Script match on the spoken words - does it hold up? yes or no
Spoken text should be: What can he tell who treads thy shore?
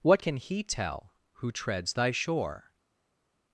yes